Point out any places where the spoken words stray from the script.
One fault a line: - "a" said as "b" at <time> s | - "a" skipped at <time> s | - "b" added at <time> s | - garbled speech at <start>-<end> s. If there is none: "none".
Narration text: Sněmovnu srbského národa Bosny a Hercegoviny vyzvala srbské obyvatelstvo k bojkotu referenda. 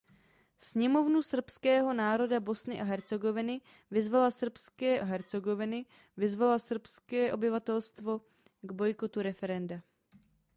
- "Hercegoviny vyzvala srbské" added at 5.0 s